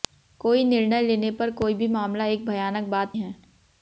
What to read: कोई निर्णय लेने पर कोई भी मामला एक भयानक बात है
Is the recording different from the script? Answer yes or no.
no